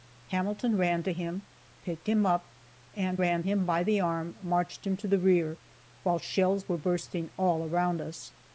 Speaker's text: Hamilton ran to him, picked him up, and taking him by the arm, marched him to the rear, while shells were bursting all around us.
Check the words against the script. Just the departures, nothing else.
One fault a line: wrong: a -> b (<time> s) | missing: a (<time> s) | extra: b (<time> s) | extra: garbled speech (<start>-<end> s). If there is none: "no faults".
wrong: taking -> ran (3.2 s)